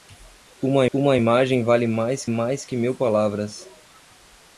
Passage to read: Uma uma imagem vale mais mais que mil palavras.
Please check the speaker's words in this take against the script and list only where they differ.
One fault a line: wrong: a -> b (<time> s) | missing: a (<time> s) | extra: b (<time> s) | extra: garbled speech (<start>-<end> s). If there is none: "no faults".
no faults